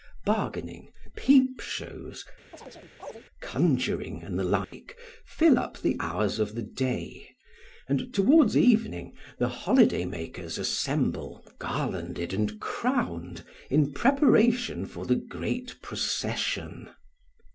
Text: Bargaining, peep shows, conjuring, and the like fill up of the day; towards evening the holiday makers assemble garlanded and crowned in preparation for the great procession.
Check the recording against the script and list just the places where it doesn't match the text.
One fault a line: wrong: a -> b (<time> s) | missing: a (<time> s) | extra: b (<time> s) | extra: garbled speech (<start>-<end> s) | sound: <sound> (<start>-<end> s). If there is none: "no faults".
sound: chirp (2.5-3.2 s)
sound: dropout (4.6-4.7 s)
extra: the hours (5.8 s)
extra: and (7.9 s)